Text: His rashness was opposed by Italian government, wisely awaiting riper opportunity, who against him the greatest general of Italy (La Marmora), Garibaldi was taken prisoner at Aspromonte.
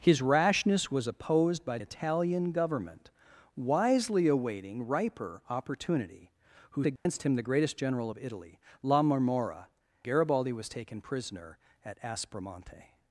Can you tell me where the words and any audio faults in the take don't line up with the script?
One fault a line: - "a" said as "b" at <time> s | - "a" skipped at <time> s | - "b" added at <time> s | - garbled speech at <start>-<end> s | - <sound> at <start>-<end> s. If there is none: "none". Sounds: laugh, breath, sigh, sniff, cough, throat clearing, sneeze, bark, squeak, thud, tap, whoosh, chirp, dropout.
- dropout at 7.0-7.1 s